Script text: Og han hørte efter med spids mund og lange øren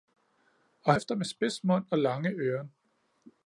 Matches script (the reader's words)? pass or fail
fail